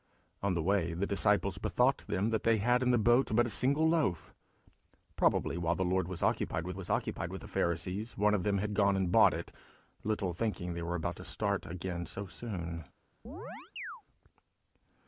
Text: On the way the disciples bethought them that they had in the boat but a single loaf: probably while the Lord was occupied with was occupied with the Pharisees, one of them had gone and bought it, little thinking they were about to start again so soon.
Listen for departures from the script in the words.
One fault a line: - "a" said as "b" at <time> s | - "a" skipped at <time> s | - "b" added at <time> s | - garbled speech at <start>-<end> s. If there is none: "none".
none